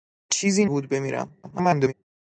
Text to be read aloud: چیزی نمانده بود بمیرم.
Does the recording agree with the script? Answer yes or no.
no